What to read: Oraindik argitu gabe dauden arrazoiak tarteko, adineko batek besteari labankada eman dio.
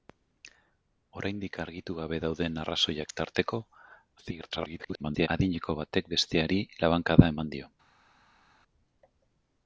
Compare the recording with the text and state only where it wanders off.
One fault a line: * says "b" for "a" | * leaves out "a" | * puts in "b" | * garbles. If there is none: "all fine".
* garbles